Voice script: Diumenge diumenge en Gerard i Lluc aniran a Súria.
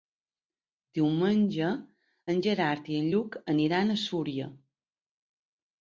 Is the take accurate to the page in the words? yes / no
no